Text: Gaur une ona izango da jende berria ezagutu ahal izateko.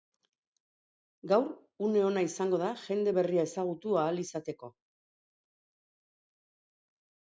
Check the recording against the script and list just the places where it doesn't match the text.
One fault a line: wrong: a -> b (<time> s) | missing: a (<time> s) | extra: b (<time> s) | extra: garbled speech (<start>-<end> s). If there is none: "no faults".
no faults